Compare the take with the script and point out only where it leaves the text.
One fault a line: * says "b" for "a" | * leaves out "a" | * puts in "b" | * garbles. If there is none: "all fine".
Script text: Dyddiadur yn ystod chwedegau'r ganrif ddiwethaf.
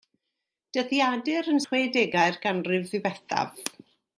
* leaves out "ystod"